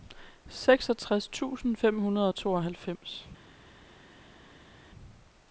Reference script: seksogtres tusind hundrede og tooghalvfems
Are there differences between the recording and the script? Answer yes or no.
yes